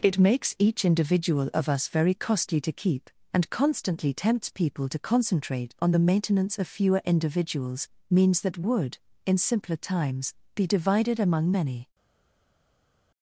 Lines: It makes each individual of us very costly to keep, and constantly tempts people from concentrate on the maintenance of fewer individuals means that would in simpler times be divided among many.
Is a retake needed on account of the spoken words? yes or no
yes